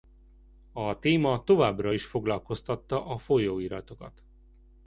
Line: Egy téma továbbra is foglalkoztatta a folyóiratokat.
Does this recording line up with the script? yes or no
no